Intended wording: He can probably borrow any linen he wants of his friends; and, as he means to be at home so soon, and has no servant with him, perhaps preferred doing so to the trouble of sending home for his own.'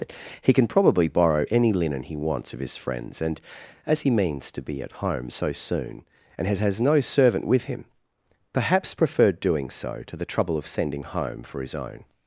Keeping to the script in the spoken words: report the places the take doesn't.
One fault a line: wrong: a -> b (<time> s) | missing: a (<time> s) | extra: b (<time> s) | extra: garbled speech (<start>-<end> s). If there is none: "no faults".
extra: has (6.6 s)